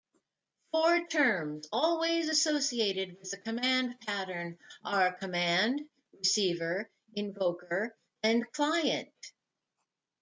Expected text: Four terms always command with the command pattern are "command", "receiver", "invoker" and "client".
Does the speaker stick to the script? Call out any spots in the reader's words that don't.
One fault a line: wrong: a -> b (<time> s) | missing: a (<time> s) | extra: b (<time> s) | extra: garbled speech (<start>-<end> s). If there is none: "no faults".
wrong: command -> associated (2.3 s)